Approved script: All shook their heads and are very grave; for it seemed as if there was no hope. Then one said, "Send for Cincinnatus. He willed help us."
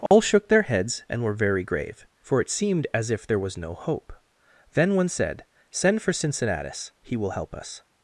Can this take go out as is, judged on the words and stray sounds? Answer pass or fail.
fail